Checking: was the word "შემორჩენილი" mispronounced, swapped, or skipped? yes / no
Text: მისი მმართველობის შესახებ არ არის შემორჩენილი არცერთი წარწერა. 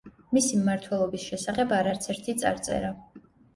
yes